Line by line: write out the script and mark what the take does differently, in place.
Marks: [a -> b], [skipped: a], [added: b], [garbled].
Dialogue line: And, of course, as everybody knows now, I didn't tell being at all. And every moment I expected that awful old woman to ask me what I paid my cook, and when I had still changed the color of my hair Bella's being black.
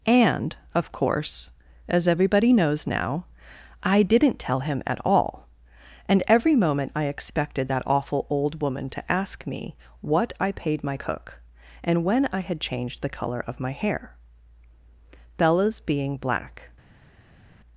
And, of course, as everybody knows now, I didn't tell [being -> him] at all. And every moment I expected that awful old woman to ask me what I paid my cook, and when I had [skipped: still] changed the color of my hair Bella's being black.